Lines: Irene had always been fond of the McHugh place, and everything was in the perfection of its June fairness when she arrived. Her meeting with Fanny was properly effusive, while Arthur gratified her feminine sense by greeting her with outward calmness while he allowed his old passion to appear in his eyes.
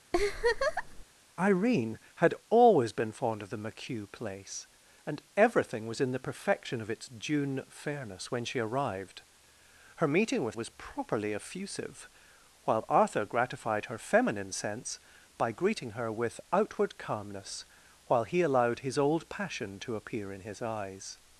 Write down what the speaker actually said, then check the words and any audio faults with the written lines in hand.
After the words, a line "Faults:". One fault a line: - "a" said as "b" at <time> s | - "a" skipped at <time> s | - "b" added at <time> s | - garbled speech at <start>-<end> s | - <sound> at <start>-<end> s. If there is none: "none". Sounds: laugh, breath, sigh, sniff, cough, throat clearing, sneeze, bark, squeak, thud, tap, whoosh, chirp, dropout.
Irene had always been fond of the McHugh place, and everything was in the perfection of its June fairness when she arrived. Her meeting with Was properly effusive, while Arthur gratified her feminine sense by greeting her with outward calmness while he allowed his old passion to appear in his eyes.
Faults:
- laugh at 0.1-1.0 s
- "Fanny" skipped at 10.6 s